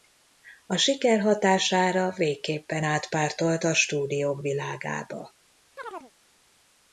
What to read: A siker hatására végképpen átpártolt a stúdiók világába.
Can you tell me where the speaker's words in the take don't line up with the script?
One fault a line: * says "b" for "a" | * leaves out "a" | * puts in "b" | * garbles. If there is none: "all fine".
all fine